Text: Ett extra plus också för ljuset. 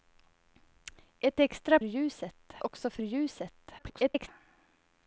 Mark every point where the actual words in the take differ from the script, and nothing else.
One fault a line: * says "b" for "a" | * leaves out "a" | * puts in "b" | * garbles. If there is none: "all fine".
* says "ljuset" for "plus"
* garbles